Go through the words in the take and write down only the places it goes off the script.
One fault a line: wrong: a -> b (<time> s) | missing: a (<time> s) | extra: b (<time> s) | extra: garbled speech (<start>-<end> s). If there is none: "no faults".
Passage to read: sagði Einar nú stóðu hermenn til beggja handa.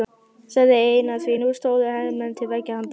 extra: því (1.2 s)